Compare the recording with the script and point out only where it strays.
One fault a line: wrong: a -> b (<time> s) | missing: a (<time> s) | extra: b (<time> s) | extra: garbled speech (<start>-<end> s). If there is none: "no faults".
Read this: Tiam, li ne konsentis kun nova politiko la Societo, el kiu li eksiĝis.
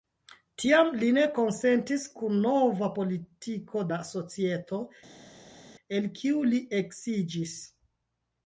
no faults